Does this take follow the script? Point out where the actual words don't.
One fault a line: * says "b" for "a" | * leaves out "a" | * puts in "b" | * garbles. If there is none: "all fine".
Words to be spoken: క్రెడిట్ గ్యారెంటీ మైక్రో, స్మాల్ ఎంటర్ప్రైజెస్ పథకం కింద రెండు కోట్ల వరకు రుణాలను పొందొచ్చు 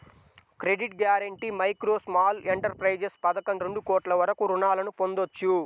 * leaves out "కింద"